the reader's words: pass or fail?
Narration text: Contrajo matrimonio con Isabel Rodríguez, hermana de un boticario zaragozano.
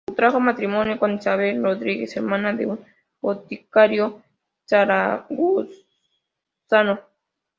pass